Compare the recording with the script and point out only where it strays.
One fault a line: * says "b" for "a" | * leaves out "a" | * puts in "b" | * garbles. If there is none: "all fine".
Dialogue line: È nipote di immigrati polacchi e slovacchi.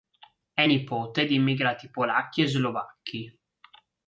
all fine